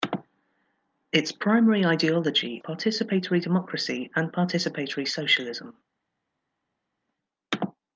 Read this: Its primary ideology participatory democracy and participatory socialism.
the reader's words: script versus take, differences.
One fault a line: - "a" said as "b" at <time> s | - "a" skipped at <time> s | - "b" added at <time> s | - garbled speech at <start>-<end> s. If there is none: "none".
none